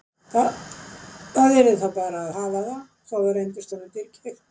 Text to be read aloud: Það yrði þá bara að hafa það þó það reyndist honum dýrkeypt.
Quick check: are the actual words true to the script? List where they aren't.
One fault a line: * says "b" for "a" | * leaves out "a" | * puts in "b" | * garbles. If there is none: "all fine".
all fine